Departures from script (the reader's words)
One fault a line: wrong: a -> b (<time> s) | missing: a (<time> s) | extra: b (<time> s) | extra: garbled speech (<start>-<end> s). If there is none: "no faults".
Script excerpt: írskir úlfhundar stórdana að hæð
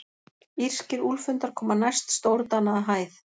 extra: koma næst (1.6 s)